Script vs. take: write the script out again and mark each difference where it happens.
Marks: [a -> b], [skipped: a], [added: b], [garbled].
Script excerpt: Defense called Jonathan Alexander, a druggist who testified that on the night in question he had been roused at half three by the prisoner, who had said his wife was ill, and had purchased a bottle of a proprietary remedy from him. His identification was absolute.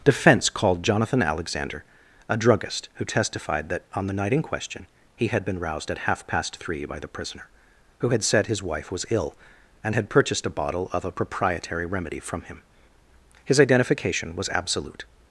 Defense called Jonathan Alexander, a druggist who testified that on the night in question he had been roused at half [added: past] three by the prisoner, who had said his wife was ill, and had purchased a bottle of a proprietary remedy from him. His identification was absolute.